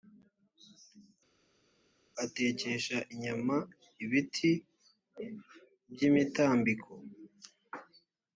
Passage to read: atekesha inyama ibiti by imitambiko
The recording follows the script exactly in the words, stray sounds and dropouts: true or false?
true